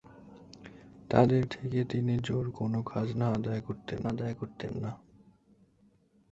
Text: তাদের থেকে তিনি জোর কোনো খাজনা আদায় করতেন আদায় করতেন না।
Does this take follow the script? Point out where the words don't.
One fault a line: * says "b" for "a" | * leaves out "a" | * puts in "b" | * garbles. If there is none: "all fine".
all fine